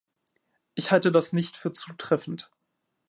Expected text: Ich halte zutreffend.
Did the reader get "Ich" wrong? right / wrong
right